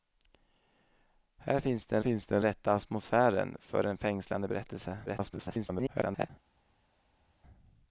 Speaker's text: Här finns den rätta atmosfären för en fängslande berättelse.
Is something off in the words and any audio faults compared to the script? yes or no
yes